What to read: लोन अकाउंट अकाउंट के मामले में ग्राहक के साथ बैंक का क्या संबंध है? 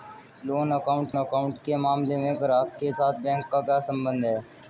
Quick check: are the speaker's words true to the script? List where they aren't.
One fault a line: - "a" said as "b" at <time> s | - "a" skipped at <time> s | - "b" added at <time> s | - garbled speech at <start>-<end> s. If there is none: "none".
none